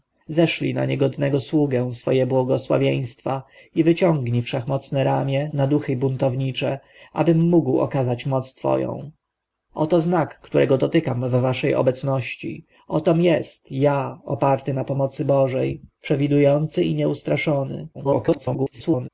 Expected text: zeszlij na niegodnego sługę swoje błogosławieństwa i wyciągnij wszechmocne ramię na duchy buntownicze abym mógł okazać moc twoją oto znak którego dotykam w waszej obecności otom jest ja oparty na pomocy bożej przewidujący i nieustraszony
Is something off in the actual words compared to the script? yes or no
yes